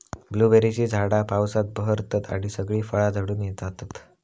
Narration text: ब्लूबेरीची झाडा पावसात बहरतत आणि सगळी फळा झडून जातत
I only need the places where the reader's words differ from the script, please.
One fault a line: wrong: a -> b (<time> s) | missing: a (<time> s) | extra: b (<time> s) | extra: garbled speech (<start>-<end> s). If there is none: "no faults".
no faults